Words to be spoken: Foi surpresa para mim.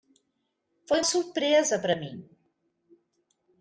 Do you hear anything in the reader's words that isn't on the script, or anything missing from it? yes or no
no